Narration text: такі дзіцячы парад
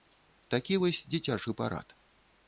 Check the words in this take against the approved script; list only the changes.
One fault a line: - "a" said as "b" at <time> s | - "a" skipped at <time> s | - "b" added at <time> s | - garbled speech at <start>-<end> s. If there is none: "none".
- "вось" added at 0.8 s